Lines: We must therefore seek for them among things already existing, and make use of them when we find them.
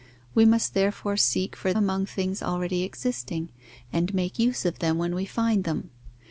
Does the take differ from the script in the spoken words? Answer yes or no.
yes